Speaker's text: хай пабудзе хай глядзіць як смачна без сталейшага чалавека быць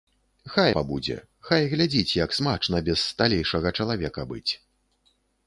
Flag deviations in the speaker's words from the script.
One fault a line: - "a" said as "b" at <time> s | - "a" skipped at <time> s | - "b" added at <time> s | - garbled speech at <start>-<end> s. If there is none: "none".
none